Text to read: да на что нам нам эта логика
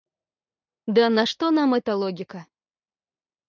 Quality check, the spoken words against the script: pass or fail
fail